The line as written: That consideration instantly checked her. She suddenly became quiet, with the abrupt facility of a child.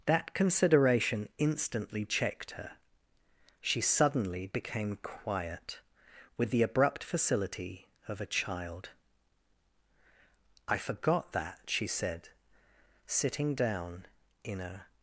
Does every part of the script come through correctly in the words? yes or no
no